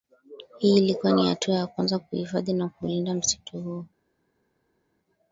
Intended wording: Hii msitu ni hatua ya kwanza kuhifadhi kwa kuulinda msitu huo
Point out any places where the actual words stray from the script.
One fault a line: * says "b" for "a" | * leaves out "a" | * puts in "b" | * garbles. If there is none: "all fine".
* says "ilikuwa" for "msitu"
* says "na" for "kwa"